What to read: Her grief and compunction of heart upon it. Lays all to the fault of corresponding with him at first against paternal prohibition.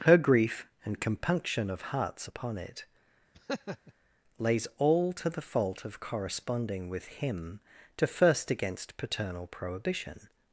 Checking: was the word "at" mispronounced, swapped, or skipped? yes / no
yes